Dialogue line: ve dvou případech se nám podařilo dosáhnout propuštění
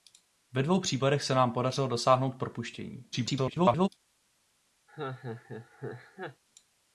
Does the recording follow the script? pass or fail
fail